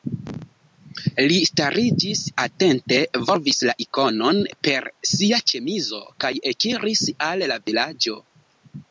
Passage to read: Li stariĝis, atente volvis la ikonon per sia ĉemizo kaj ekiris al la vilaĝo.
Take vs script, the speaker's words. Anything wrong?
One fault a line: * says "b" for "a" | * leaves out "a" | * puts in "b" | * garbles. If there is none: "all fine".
all fine